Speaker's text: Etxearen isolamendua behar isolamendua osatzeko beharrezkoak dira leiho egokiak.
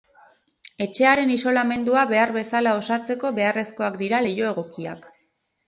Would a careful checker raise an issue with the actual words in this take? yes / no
yes